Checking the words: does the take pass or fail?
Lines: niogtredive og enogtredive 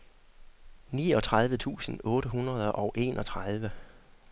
fail